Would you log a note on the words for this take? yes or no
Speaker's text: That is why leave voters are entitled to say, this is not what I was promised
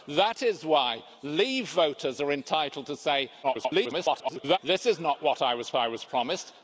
yes